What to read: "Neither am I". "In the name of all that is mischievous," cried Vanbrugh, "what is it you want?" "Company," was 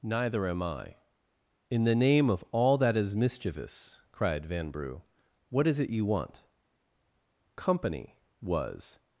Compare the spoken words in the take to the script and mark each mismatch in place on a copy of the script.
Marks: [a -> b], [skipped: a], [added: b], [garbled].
"Neither am I". "In the name of all that is mischievous," cried Vanbrugh, "what is it you want?" "Company," was